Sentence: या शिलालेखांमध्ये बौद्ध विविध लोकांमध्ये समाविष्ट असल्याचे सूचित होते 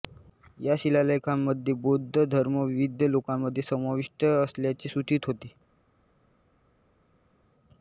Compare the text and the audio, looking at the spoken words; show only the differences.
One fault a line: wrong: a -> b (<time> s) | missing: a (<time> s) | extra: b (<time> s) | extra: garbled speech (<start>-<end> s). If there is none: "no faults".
extra: धर्म (2.2 s)